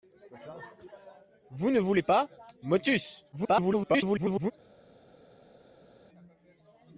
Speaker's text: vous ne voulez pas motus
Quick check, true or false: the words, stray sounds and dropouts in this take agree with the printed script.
false